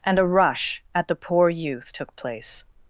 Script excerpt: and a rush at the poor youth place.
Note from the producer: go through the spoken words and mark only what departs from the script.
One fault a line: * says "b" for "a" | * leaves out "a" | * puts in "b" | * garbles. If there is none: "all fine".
* puts in "took"